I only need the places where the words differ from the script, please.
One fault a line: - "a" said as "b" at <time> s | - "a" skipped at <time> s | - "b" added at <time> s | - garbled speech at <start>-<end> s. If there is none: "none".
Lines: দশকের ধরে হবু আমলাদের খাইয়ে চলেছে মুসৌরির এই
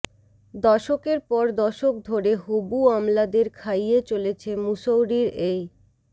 - "পর দশক" added at 1.3 s